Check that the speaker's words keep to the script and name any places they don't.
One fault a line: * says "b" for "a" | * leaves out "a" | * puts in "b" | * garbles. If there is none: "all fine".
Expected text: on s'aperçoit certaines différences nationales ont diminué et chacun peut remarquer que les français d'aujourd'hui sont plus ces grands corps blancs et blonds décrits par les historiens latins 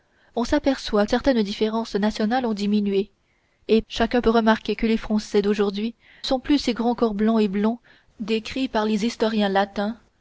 all fine